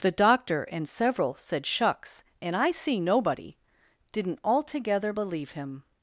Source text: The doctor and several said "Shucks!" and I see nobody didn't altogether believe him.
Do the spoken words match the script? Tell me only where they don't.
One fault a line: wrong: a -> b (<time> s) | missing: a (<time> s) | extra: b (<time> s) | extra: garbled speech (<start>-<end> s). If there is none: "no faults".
no faults